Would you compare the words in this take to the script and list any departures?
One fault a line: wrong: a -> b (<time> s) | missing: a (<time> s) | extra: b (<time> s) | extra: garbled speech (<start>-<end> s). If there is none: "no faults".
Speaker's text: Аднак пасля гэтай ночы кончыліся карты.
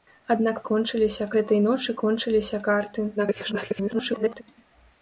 wrong: пасля -> кончыліся (0.7 s)
extra: garbled speech (3.2-4.4 s)